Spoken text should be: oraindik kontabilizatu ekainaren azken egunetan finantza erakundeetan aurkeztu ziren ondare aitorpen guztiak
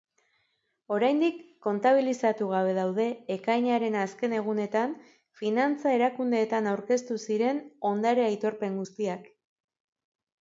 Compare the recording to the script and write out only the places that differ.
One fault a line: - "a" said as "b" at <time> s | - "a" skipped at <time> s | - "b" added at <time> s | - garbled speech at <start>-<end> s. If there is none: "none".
- "gabe daude" added at 2.5 s